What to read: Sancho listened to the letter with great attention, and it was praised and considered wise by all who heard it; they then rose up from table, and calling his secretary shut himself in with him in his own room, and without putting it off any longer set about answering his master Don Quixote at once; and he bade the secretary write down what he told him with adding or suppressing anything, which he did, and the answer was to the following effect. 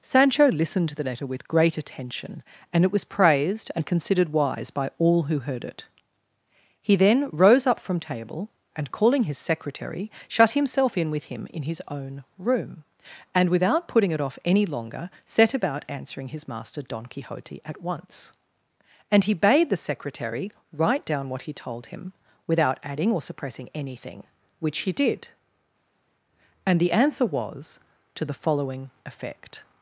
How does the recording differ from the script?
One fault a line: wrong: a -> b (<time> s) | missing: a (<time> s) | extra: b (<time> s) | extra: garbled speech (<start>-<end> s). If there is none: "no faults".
wrong: they -> he (6.8 s)
wrong: with -> without (22.5 s)